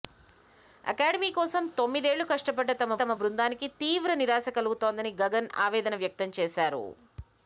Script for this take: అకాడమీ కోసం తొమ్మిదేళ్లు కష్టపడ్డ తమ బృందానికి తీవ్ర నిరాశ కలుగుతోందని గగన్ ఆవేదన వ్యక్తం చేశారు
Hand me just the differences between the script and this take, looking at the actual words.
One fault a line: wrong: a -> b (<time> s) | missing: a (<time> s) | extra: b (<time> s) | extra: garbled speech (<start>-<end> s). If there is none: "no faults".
extra: తమ (3.0 s)